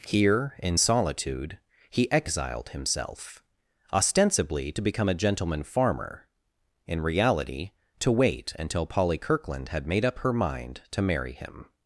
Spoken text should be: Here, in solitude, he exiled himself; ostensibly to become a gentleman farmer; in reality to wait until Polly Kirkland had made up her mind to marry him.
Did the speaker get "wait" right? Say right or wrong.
right